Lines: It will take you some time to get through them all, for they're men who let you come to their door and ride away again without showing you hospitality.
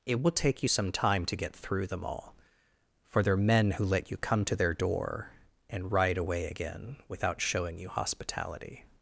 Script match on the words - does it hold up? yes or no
yes